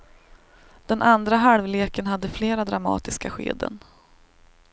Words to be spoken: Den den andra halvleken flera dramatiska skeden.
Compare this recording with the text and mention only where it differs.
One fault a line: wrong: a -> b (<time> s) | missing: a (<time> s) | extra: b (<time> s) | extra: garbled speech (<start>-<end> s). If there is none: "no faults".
missing: den (1.0 s)
extra: hade (2.1 s)